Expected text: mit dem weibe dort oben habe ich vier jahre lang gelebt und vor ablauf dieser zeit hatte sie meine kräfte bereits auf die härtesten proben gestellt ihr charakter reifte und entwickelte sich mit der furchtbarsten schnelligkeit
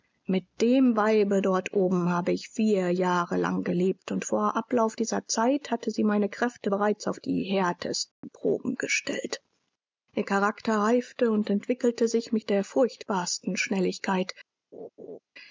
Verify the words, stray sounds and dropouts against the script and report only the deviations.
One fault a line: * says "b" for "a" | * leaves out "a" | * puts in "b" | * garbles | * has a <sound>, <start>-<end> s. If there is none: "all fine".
* has a dropout, 8.1-8.2 s
* has a laugh, 14.7-15.2 s